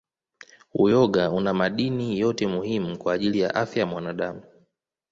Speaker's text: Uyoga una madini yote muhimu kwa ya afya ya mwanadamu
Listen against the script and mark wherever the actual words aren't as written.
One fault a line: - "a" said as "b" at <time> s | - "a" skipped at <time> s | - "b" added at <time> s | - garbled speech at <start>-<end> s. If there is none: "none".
- "ajili" added at 3.1 s